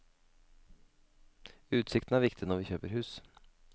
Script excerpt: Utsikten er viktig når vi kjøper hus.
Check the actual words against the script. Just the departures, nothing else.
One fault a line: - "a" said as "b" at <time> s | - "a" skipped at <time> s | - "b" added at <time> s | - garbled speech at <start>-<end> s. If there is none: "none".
none